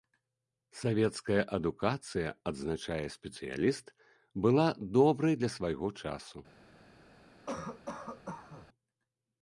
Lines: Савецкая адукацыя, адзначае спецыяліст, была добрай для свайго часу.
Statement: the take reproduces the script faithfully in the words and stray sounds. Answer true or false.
false